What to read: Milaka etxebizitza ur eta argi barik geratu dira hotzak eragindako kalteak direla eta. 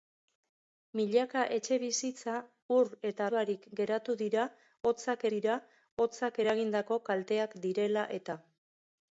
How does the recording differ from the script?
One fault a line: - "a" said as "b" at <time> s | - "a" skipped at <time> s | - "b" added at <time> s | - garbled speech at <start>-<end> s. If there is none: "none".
- "argi" skipped at 3.3 s
- "dira hotzak" added at 5.3 s